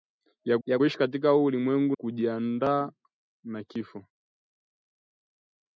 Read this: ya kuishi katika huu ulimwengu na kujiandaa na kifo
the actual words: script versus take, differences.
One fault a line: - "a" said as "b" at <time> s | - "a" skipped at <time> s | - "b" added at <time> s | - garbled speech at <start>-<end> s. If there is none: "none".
- "ya" added at 0.6 s
- "na" skipped at 2.0 s